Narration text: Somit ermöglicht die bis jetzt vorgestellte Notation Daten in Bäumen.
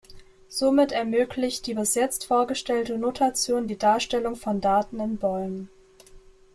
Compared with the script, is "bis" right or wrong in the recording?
right